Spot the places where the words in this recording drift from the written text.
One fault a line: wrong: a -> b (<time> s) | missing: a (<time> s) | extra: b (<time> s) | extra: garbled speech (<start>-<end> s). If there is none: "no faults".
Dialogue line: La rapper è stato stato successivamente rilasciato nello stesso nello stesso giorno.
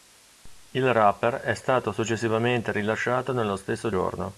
wrong: La -> Il (0.7 s)
missing: stato (1.9 s)
missing: nello stesso (3.9 s)